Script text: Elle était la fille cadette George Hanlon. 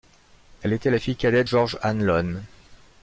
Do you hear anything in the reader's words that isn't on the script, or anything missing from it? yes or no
no